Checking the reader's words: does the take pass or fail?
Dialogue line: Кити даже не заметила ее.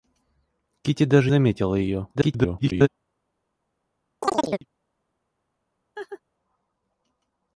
fail